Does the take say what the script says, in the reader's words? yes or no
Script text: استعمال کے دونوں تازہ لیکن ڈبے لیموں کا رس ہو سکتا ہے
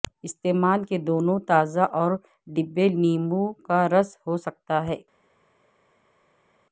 no